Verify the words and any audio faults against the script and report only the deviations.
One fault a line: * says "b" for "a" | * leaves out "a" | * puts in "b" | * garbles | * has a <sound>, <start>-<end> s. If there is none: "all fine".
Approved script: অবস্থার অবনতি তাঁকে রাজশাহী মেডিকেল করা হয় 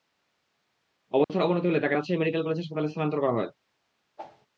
* has a dropout, 1.2-1.3 s
* puts in "হলে"
* puts in "কলেজ হাসপাতালে স্থানান্তর"
* has a whoosh, 4.2-4.5 s